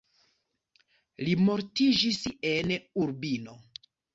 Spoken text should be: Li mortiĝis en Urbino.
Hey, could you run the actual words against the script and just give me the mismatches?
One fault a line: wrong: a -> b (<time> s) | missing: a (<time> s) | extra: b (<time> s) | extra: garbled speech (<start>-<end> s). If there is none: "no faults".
no faults